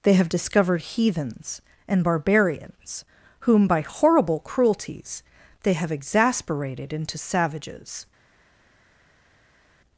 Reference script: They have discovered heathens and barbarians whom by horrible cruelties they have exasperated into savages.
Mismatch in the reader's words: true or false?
false